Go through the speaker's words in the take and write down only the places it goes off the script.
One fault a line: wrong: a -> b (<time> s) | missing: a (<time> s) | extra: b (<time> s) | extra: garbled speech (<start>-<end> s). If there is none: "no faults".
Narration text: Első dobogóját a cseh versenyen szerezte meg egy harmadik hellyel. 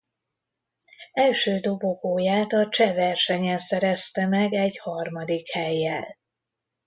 no faults